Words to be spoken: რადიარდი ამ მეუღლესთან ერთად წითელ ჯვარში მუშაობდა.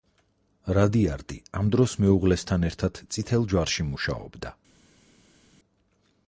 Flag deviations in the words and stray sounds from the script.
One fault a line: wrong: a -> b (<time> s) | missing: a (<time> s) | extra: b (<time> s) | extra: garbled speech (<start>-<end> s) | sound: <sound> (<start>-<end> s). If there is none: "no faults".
extra: დროს (1.8 s)